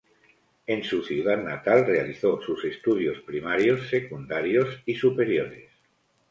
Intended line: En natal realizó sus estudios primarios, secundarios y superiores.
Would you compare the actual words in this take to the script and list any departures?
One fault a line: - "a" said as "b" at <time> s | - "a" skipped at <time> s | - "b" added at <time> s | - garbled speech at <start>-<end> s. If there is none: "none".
- "su ciudad" added at 0.8 s